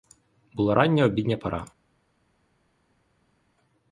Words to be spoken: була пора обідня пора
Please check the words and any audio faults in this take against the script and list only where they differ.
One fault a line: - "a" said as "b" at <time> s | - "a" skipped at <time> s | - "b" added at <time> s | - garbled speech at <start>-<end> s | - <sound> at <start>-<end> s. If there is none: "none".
- "пора" said as "рання" at 0.8 s